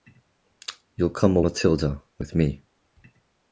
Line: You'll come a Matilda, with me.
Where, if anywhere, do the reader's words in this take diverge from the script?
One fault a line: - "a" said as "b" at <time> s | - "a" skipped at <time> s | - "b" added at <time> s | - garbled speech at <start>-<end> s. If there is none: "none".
none